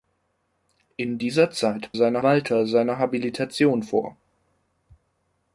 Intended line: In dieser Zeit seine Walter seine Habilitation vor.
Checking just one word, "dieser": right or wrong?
right